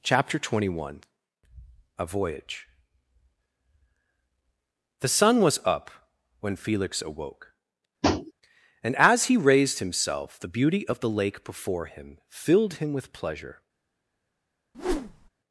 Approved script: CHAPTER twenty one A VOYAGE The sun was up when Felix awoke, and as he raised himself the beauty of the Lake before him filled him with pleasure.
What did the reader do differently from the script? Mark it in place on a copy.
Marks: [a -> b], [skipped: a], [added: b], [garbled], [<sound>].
CHAPTER twenty one A VOYAGE The sun was up when Felix awoke, [tap] and as he raised himself the beauty of the Lake before him filled him with pleasure. [whoosh]